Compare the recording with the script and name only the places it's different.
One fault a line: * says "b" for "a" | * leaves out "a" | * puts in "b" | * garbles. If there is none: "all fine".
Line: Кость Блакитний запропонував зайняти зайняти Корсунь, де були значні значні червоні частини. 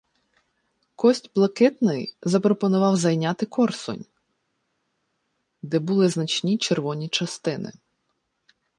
* leaves out "зайняти"
* leaves out "значні"